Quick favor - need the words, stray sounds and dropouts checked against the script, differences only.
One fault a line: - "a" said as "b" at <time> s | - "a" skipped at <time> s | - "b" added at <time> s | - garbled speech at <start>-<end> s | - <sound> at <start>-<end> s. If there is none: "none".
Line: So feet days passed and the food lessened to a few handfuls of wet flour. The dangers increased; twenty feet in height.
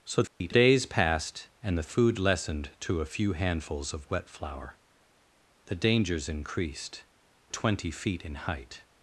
- dropout at 0.3-0.4 s